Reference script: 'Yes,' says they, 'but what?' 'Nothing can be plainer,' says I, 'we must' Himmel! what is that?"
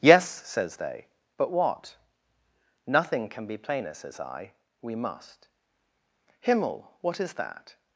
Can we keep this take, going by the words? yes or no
yes